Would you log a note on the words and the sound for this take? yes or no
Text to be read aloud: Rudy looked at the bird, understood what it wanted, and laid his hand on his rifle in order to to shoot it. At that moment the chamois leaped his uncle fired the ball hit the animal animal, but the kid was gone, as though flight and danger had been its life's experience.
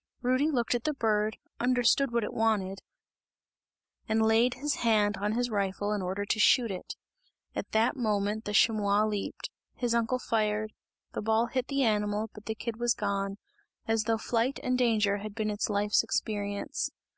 yes